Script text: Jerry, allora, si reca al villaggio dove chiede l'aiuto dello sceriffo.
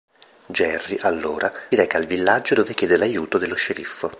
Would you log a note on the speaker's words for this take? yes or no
yes